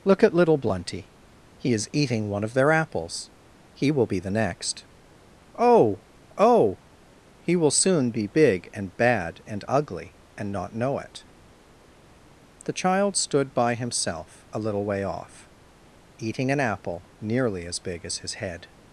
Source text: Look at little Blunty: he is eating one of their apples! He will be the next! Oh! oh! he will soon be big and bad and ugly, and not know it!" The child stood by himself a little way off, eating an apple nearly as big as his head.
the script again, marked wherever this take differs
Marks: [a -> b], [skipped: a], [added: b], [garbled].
Look at little Blunty: he is eating one of their apples! He will be the next! Oh! oh! he will soon be big and bad and ugly, and not know it!" The child stood by himself a little way off, eating an apple nearly as big as his head.